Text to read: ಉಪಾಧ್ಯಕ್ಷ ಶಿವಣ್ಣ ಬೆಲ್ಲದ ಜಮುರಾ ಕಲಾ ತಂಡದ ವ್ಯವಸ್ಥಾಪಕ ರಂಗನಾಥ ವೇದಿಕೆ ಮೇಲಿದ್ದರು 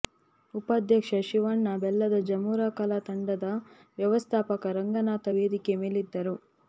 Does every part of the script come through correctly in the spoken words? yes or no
yes